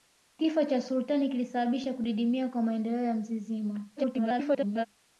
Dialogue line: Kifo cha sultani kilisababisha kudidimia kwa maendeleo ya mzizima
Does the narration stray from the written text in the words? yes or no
yes